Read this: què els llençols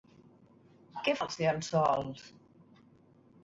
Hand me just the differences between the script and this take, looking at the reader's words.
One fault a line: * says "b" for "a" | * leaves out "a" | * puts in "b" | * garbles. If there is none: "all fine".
all fine